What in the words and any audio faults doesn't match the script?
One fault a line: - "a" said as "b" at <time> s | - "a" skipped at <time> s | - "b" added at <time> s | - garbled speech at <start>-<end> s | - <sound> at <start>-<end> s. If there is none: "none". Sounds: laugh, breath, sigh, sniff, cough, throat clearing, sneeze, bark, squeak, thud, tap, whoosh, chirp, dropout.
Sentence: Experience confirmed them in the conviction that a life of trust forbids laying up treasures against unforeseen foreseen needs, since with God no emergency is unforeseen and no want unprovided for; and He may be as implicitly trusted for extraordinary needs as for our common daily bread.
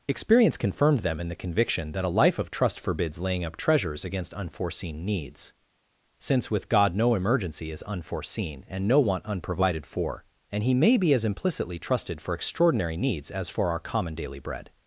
- "foreseen" skipped at 5.0 s